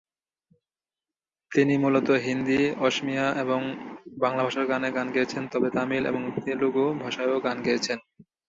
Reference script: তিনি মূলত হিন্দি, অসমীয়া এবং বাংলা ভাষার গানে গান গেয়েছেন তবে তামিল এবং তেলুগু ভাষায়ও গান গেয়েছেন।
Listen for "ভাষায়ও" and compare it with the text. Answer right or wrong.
right